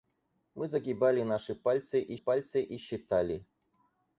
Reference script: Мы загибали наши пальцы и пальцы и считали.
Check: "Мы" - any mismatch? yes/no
no